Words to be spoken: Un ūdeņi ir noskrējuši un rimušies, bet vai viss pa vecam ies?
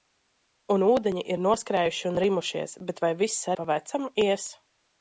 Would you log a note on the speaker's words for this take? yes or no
no